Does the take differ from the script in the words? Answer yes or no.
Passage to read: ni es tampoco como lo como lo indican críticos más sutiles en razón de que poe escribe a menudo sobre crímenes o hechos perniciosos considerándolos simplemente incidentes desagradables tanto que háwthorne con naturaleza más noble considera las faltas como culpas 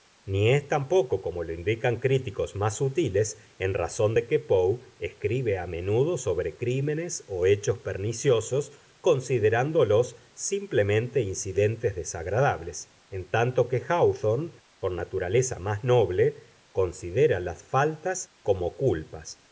yes